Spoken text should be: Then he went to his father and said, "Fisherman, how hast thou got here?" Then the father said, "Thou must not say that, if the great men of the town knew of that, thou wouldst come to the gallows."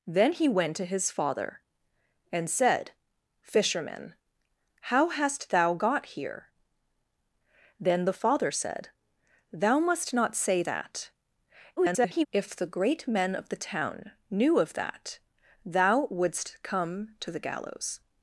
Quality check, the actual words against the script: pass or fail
fail